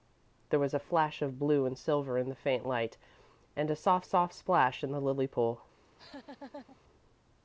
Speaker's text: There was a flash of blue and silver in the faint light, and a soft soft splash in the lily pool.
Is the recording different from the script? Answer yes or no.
no